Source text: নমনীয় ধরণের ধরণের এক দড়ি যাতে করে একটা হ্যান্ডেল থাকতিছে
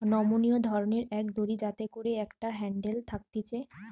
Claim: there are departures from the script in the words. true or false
true